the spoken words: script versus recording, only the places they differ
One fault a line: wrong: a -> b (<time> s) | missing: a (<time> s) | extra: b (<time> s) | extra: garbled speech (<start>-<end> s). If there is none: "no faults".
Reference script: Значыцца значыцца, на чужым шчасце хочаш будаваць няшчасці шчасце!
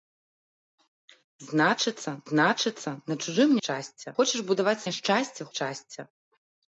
no faults